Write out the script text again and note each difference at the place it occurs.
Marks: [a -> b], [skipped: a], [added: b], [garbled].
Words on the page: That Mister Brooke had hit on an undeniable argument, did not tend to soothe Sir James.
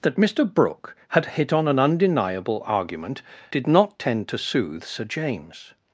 That Mister Brooke had hit on an undeniable argument, did not tend to soothe Sir James.